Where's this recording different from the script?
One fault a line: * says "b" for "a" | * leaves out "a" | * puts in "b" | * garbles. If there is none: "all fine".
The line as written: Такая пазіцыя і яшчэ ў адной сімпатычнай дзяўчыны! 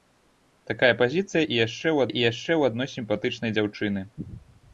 * puts in "і яшчэ ў"